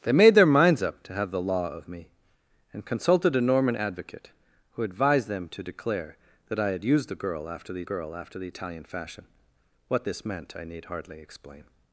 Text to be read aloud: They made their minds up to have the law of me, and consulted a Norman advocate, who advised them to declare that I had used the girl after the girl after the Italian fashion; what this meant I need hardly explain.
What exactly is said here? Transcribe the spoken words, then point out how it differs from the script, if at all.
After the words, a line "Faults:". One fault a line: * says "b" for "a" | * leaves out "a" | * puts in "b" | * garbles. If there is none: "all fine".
They made their minds up to have the law of me, and consulted a Norman advocate, who advised them to declare that I had used the girl after the girl after the Italian fashion; what this meant I need hardly explain.
Faults:
all fine